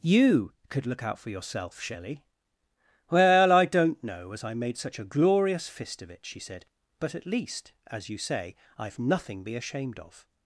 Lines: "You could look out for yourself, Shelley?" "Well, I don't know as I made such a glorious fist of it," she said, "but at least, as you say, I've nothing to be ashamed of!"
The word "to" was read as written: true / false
false